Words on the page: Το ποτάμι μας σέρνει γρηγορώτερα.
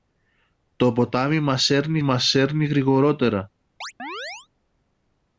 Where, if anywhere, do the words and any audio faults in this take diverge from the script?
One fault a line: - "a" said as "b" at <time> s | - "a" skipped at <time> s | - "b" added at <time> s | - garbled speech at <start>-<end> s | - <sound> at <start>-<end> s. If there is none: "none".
- "μας σέρνει" added at 2.0 s
- chirp at 3.8-4.5 s